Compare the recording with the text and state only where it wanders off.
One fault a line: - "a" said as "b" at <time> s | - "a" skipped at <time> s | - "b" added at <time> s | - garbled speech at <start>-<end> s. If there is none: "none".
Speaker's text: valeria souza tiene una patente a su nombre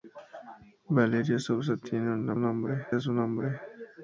- "patente" said as "nombre" at 2.4 s